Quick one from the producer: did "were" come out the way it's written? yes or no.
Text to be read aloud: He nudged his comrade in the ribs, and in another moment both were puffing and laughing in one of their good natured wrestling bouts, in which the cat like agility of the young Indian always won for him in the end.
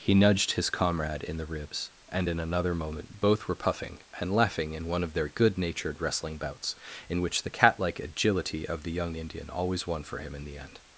yes